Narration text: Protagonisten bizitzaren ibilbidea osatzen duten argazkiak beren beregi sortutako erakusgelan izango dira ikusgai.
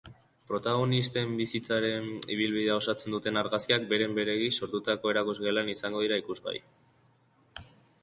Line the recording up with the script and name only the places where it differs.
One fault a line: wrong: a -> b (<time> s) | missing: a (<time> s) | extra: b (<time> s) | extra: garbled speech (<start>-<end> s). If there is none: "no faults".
no faults